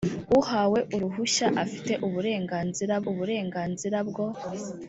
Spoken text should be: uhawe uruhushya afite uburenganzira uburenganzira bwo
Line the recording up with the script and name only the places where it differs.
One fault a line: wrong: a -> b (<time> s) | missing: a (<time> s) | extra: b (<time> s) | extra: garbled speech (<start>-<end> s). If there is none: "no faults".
no faults